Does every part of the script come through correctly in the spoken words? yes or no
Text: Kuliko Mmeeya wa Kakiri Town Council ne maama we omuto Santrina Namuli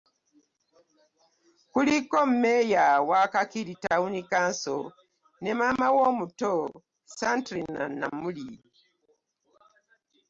yes